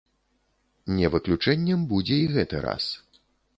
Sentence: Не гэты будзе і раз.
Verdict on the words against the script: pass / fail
fail